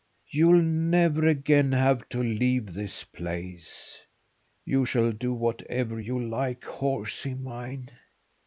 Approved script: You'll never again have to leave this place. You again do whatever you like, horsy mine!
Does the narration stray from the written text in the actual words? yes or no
yes